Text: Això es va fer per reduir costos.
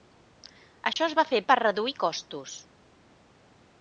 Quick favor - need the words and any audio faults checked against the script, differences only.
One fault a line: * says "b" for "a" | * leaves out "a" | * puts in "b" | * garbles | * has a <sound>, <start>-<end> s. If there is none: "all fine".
* has a dropout, 0.9-1.0 s